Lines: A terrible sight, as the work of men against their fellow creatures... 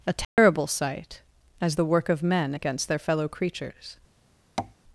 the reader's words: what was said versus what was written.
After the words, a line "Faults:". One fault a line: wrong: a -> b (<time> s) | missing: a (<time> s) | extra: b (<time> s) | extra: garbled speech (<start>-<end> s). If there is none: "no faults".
A terrible sight, as the work of men against their fellow creatures...
Faults:
no faults